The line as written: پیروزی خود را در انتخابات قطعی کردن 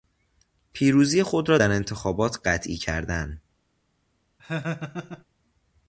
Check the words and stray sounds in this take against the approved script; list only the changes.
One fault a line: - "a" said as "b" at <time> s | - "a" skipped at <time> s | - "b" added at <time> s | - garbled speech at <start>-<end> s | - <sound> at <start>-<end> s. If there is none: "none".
- laugh at 4.4-5.2 s